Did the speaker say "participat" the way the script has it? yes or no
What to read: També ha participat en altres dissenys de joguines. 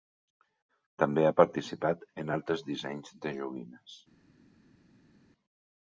yes